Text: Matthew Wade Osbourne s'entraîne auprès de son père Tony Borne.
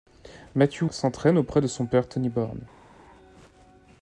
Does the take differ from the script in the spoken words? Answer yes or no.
yes